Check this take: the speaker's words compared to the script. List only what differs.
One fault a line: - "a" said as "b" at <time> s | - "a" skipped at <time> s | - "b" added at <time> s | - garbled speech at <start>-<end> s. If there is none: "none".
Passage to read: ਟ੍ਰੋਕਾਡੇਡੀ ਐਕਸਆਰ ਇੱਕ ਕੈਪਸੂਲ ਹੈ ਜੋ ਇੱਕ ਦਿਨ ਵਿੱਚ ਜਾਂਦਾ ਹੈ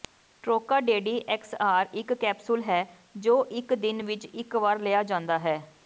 - "ਇੱਕ ਵਾਰ ਲਿਆ" added at 4.3 s